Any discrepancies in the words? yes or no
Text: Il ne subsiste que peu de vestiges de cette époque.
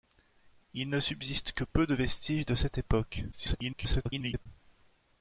yes